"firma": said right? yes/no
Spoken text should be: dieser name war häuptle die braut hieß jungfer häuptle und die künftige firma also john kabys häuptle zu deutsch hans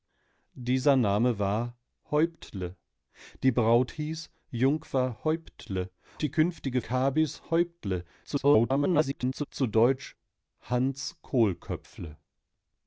no